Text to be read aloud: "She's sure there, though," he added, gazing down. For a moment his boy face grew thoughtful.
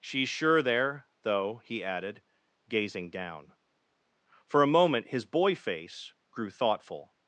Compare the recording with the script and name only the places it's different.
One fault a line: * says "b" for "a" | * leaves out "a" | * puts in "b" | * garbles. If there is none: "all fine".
all fine